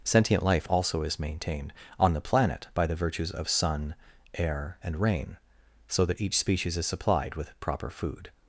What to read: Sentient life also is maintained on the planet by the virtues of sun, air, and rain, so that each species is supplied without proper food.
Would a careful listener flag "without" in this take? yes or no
yes